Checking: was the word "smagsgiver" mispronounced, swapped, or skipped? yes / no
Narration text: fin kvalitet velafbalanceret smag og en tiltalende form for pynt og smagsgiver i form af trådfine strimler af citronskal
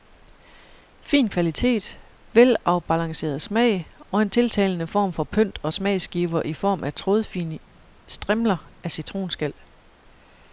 no